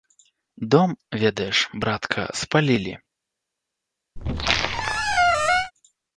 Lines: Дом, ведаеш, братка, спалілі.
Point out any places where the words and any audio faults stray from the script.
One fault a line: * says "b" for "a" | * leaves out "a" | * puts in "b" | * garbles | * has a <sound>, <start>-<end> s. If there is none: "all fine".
* has a squeak, 4.2-5.7 s